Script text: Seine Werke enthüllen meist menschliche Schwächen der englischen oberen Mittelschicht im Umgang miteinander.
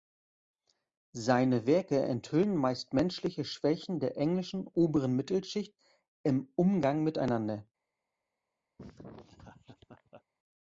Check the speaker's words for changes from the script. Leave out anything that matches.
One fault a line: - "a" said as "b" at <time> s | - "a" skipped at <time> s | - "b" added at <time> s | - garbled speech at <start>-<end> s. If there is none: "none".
none